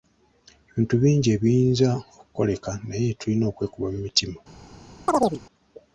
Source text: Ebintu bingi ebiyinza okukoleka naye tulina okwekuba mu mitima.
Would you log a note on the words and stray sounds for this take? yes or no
yes